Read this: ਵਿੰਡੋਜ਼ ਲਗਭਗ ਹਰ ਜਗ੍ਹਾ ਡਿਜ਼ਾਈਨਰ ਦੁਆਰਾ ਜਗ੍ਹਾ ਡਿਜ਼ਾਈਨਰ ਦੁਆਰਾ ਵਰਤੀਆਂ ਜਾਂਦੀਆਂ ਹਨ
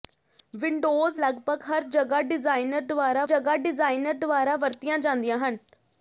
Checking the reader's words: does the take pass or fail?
pass